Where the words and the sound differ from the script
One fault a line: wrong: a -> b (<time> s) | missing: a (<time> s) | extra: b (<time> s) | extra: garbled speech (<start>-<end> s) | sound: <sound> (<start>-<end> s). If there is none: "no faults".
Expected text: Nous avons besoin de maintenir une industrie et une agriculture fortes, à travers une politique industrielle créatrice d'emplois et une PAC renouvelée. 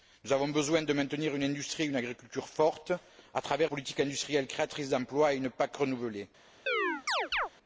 missing: une (3.7 s)
sound: chirp (6.7-7.5 s)